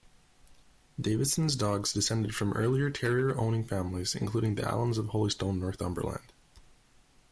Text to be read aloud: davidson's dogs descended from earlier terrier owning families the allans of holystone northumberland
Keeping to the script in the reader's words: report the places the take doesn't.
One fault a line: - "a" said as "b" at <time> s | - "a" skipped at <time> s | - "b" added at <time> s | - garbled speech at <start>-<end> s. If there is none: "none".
- "including" added at 4.2 s